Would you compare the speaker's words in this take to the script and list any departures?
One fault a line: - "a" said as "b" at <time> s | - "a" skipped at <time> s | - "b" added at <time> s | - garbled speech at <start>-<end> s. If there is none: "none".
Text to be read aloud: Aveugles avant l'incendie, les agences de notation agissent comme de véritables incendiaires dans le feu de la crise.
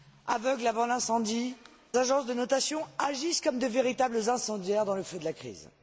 - "les" skipped at 1.6 s